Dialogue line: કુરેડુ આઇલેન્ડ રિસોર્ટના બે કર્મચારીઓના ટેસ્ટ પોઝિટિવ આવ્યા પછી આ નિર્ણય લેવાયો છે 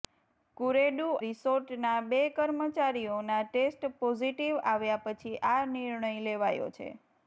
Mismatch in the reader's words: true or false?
true